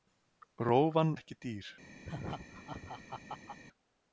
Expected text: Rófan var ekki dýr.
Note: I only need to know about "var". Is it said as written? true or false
false